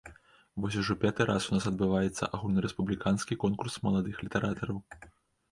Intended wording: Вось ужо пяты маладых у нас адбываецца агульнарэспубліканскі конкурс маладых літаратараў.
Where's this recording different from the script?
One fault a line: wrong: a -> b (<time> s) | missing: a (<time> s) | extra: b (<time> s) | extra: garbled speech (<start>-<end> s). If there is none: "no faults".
wrong: маладых -> раз (1.3 s)